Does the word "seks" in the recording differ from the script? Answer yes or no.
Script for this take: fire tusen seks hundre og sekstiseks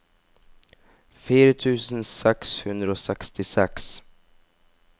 no